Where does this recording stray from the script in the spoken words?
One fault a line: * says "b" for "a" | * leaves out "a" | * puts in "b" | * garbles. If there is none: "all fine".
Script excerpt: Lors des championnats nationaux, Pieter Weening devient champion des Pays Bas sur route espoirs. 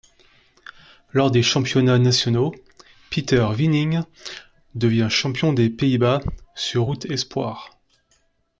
all fine